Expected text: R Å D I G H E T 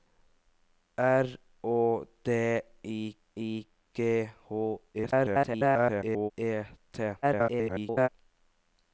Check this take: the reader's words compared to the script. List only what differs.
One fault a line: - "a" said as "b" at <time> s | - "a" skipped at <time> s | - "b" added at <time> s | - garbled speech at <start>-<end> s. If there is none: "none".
- "I" added at 3.4 s
- garbled speech at 4.9-6.3 s
- garbled speech at 7.2-8.1 s